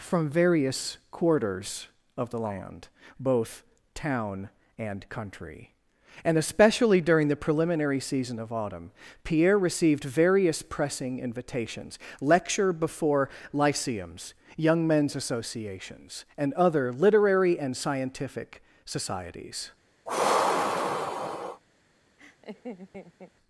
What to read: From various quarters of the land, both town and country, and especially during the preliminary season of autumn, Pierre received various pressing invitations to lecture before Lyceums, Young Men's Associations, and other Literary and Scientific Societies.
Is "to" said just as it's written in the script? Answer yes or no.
no